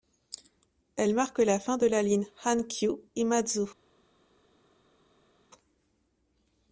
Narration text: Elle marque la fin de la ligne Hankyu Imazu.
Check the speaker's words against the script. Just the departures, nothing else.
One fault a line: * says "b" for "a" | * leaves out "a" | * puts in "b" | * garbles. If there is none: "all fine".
all fine